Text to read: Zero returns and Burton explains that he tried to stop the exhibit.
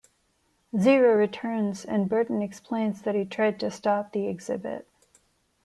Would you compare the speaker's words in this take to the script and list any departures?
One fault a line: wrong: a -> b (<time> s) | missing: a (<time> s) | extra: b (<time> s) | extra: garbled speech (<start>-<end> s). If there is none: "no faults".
no faults